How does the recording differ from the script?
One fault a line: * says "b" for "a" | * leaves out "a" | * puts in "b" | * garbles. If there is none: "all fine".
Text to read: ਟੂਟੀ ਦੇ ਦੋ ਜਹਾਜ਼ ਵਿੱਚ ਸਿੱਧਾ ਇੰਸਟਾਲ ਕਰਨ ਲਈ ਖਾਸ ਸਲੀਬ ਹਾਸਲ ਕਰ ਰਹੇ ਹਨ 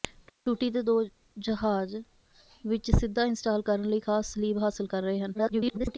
* garbles